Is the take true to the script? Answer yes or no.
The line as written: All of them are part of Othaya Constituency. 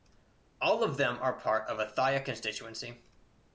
yes